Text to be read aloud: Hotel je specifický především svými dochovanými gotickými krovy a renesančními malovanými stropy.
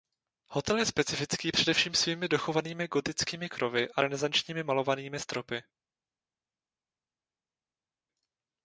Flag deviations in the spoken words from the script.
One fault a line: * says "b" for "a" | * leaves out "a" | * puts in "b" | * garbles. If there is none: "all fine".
all fine